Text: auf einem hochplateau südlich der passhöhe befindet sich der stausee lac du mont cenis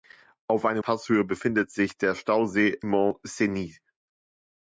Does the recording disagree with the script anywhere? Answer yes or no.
yes